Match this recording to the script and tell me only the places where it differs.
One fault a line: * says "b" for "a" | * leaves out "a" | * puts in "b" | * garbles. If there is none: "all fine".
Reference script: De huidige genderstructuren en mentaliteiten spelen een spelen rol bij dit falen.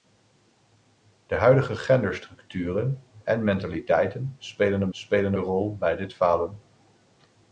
all fine